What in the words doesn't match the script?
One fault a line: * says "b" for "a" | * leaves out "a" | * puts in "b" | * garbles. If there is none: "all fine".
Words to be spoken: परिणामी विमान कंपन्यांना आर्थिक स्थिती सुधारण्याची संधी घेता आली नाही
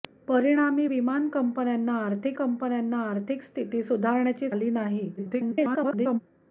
* puts in "कंपन्यांना आर्थिक"
* leaves out "संधी घेता"
* garbles